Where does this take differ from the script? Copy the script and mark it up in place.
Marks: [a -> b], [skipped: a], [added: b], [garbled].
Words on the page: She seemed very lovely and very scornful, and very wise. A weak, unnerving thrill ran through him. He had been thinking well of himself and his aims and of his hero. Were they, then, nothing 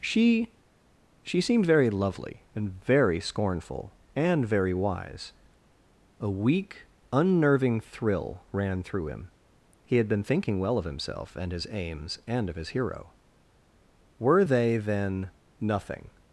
She [added: she] seemed very lovely and very scornful, and very wise. A weak, unnerving thrill ran through him. He had been thinking well of himself and his aims and of his hero. Were they, then, nothing